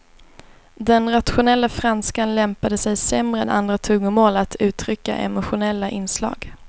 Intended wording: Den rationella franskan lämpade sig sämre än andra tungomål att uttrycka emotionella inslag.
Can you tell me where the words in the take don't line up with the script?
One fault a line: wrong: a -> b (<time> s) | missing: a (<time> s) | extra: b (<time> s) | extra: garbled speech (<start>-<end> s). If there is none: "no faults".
no faults